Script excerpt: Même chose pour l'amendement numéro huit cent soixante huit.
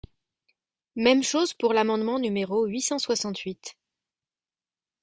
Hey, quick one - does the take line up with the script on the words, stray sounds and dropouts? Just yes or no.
yes